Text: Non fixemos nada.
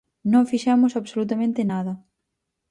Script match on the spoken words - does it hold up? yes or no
no